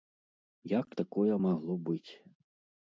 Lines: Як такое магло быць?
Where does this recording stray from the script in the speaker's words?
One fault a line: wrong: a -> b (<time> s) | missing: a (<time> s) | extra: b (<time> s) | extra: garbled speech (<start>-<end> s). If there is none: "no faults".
no faults